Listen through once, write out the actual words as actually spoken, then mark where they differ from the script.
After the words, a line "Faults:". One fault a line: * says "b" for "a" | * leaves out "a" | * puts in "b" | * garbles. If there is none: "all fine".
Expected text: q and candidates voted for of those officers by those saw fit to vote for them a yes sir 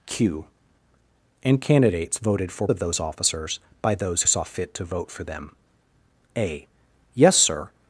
q and candidates voted for of those officers by those saw fit to vote for them a yes sir
Faults:
all fine